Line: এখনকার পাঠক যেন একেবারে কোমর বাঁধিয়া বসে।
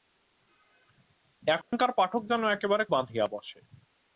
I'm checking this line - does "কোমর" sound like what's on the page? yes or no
no